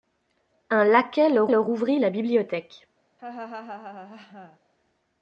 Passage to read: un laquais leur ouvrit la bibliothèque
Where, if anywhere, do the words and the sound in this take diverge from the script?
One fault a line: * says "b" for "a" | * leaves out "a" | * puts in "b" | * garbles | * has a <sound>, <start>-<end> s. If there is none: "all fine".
* puts in "leur"
* has a laugh, 3.2-4.6 s